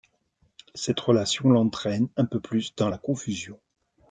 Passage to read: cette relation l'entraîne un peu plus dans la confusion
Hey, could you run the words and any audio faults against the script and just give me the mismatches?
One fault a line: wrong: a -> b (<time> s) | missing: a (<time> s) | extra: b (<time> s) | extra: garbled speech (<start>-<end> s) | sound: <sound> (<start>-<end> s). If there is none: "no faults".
no faults